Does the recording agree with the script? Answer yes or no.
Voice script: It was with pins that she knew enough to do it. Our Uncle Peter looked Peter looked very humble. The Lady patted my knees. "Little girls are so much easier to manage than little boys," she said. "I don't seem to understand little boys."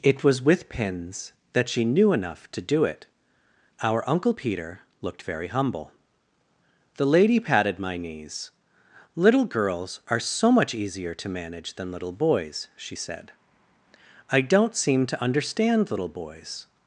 no